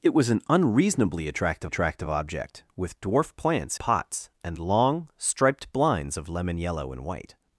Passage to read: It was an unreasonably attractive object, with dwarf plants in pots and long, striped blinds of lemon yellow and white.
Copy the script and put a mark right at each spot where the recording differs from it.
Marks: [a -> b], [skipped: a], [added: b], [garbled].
It was an unreasonably attractive [added: attractive] object, with dwarf plants [skipped: in] pots and long, striped blinds of lemon yellow and white.